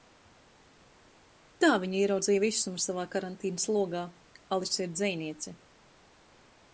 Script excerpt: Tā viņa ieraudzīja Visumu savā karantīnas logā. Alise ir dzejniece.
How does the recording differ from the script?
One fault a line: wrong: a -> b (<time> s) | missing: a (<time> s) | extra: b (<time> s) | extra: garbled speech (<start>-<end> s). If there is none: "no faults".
no faults